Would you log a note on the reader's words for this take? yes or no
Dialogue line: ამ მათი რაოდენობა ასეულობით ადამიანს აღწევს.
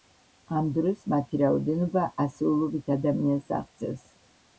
yes